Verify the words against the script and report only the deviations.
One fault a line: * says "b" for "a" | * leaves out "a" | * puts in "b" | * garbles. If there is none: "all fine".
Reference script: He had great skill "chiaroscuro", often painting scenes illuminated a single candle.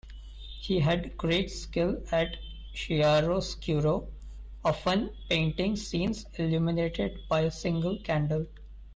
* puts in "at"
* puts in "by"